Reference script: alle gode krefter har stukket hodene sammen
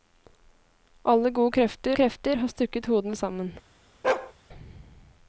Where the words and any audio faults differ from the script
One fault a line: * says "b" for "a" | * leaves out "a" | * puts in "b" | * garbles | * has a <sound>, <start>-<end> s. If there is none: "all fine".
* puts in "krefter"
* has a bark, 4.0-4.3 s